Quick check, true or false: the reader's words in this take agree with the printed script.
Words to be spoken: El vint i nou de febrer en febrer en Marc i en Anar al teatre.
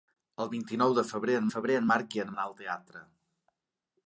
true